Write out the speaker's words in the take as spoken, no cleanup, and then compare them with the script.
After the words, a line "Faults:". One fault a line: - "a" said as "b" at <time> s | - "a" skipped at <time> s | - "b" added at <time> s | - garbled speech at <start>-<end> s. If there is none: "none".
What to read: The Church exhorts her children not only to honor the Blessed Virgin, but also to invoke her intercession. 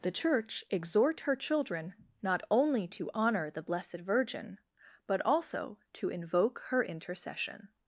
The Church exhort her children not only to honor the Blessed Virgin, but also to invoke her intercession.
Faults:
- "exhorts" said as "exhort" at 0.7 s